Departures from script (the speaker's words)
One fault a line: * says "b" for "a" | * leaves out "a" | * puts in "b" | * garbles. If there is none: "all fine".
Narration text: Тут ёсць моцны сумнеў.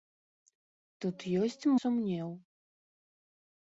* leaves out "моцны"